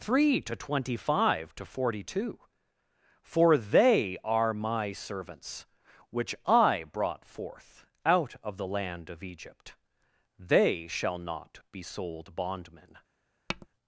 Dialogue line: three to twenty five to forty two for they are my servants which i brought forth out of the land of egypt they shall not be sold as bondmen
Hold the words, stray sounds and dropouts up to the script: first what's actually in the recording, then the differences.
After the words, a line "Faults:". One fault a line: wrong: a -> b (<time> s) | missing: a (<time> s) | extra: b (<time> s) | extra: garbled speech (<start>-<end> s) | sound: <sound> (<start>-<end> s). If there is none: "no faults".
three to twenty five to forty two for they are my servants which i brought forth out of the land of egypt they shall not be sold bondmen
Faults:
missing: as (12.3 s)
sound: tap (13.5-13.7 s)